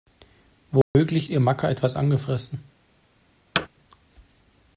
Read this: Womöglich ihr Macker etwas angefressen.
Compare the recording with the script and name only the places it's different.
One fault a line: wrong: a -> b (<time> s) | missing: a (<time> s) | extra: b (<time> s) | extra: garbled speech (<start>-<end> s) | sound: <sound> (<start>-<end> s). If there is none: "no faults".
sound: dropout (0.8-1.0 s)
sound: thud (3.5-3.7 s)